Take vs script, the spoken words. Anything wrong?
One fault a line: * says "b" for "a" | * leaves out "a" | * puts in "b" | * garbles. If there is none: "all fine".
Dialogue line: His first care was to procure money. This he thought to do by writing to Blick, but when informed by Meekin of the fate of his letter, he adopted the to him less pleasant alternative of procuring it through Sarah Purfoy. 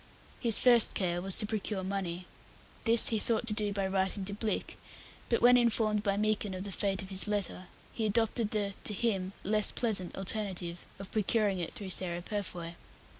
all fine